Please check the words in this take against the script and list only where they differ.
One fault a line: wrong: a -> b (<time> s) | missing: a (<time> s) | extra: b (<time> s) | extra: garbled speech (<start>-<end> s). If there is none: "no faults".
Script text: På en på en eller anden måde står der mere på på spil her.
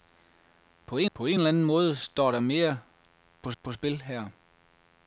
no faults